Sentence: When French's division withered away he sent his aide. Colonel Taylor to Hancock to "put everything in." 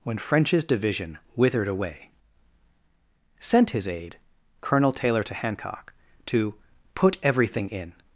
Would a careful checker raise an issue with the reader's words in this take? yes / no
yes